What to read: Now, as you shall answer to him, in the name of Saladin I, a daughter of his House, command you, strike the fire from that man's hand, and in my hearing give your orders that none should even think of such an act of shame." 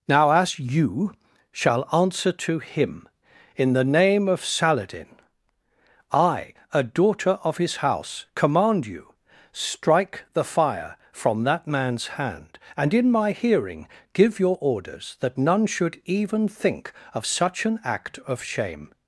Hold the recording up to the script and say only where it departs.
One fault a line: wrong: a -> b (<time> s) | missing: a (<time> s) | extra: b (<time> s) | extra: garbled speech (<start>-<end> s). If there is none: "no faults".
no faults